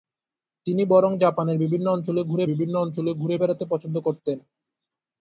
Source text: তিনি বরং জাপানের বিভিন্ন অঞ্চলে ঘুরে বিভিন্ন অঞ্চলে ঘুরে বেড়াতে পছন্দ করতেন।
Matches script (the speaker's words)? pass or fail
pass